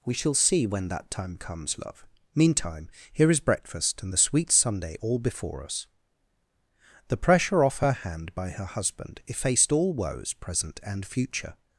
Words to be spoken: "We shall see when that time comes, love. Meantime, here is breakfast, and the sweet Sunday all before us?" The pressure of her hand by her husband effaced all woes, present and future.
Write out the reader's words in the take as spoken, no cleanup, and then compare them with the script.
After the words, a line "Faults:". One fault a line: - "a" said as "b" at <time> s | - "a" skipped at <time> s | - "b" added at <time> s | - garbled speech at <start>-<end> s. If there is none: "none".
"We shall see when that time comes, love. Meantime, here is breakfast, and the sweet Sunday all before us?" The pressure off her hand by her husband effaced all woes, present and future.
Faults:
- "of" said as "off" at 7.6 s